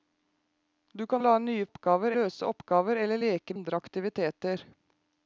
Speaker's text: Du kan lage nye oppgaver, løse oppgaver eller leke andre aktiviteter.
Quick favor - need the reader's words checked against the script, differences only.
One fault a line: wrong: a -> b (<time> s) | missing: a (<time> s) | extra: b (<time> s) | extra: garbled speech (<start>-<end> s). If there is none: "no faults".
no faults